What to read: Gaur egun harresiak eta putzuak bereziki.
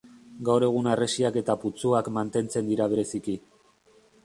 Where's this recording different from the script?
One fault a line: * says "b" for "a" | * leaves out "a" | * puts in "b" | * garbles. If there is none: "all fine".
* puts in "mantentzen dira"